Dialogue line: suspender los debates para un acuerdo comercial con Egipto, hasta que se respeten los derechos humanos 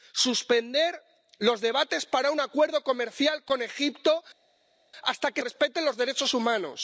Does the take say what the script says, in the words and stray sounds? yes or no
no